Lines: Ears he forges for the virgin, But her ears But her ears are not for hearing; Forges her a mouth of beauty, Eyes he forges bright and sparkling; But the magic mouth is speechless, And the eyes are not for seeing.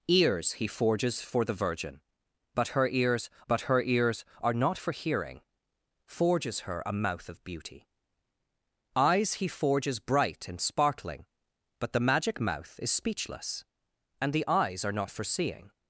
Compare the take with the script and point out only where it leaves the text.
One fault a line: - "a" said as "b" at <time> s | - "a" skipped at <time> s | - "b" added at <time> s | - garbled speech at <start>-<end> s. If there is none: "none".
none